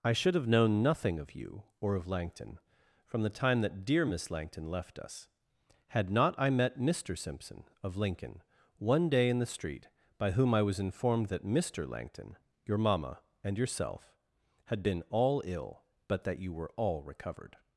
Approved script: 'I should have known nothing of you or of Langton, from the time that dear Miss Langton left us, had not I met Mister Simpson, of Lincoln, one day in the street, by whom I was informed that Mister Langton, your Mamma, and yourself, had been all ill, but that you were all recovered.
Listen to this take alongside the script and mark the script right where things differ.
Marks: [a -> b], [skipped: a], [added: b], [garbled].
'I should have known nothing of you or of Langton, from the time that dear Miss Langton left us, had not I met Mister Simpson, of Lincoln, one day in the street, by whom I was informed that Mister Langton, your Mamma, and yourself, had been all ill, but that you were all recovered.